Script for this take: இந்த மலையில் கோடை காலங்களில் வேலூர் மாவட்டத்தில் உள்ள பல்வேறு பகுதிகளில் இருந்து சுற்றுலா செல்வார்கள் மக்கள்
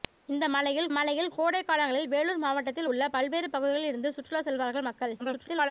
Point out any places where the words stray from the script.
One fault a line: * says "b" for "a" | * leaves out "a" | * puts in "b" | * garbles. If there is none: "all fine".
* puts in "மலையில்"
* garbles